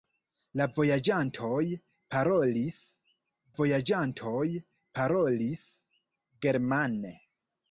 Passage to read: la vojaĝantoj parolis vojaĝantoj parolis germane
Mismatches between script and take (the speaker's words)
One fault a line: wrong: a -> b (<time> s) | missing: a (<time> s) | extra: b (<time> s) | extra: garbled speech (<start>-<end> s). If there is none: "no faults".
no faults